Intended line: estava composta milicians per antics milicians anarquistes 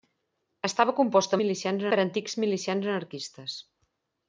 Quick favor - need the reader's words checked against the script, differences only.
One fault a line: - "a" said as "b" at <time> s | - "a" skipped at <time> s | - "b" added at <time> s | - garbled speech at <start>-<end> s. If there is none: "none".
none